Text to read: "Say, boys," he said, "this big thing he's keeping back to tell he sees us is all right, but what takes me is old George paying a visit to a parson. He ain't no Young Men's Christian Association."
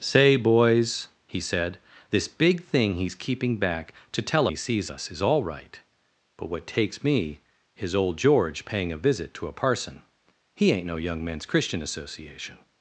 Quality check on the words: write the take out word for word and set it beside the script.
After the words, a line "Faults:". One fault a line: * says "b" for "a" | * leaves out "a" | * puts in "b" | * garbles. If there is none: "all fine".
"Say, boys," he said, "this big thing he's keeping back to tell he sees us is all right, but what takes me is old George paying a visit to a parson. He ain't no Young Men's Christian Association."
Faults:
all fine